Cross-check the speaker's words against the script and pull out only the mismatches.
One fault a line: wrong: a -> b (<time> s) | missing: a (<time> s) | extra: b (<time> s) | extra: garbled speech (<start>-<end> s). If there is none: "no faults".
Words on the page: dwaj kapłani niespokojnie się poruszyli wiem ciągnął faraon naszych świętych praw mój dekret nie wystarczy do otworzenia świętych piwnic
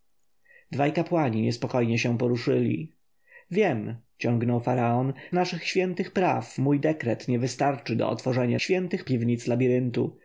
no faults